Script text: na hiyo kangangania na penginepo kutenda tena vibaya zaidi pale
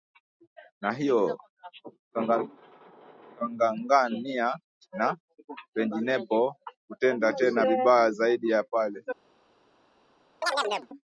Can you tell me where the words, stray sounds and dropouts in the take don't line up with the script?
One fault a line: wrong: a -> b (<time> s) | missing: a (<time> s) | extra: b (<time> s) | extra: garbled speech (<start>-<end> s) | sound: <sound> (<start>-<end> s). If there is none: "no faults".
extra: ya (8.5 s)
sound: chirp (10.4-10.9 s)